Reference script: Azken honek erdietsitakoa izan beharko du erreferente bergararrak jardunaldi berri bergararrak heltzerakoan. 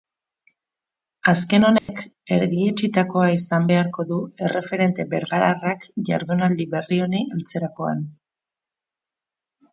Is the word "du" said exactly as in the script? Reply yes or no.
yes